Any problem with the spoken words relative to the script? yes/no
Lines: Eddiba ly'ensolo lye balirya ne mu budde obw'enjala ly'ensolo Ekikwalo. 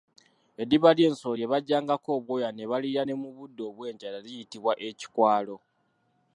yes